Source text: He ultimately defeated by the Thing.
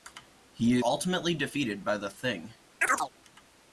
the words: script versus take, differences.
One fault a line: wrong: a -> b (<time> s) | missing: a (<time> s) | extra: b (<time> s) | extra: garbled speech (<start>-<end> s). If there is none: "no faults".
no faults